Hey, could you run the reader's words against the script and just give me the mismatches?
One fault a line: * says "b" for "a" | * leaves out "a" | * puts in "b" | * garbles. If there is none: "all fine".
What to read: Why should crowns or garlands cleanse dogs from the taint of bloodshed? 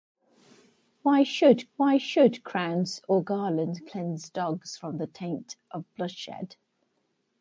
* puts in "why should"